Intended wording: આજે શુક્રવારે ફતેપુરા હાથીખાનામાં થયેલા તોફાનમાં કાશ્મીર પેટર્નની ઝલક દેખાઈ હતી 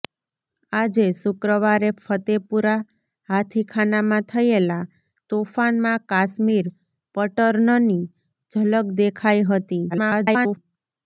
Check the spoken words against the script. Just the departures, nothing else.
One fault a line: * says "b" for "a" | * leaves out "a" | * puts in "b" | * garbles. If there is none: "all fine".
* garbles